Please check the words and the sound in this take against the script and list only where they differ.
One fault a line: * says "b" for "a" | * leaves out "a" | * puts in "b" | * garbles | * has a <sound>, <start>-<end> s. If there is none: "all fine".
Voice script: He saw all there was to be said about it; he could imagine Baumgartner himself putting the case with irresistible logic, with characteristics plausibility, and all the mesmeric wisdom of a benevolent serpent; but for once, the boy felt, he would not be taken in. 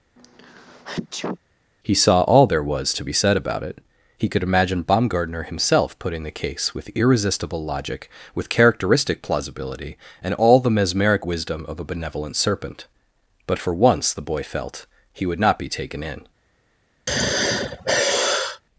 * has a sneeze, 0.2-1.4 s
* says "characteristic" for "characteristics"
* has a sigh, 17.1-18.6 s